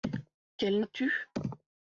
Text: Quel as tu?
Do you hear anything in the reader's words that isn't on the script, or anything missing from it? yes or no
no